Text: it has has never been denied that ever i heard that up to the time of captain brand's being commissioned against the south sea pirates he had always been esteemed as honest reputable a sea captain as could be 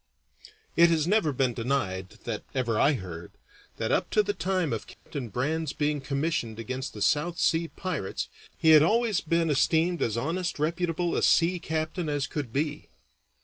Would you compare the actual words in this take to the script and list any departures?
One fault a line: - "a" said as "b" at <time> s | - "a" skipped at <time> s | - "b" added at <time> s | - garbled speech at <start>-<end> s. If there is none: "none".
- "has" skipped at 1.1 s